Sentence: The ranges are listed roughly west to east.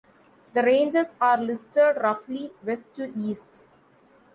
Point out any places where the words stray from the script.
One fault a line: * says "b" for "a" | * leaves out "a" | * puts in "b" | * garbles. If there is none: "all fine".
all fine